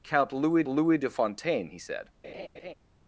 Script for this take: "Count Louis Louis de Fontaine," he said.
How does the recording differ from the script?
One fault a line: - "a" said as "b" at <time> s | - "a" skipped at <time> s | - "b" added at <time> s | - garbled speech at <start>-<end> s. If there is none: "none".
none